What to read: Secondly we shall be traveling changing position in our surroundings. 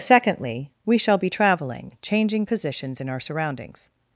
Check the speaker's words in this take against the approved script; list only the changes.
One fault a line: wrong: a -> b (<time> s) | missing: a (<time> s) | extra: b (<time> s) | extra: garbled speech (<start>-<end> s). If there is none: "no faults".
wrong: position -> positions (2.4 s)